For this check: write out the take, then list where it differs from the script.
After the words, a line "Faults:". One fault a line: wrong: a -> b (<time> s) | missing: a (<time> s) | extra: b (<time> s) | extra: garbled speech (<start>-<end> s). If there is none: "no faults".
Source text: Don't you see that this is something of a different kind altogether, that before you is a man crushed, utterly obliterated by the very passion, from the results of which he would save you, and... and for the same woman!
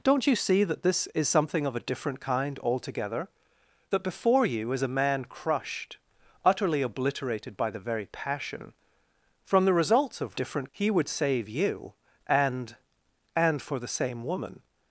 Don't you see that this is something of a different kind altogether, that before you is a man crushed, utterly obliterated by the very passion, from the results of different he would save you, and... and for the same woman!
Faults:
wrong: which -> different (10.3 s)